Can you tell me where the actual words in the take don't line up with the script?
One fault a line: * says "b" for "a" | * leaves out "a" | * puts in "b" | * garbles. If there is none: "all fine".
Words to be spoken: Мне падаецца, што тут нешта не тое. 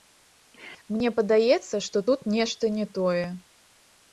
all fine